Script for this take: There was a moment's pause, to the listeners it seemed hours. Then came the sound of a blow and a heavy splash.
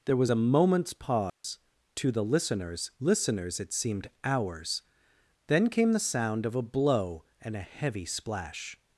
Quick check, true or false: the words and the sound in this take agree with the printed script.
false